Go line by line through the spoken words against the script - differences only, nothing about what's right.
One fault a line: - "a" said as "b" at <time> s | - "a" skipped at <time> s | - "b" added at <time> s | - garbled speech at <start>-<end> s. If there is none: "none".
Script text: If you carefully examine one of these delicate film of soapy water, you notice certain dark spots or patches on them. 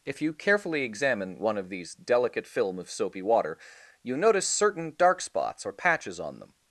none